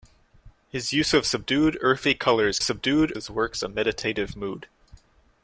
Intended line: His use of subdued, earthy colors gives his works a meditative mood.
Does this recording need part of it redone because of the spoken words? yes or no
yes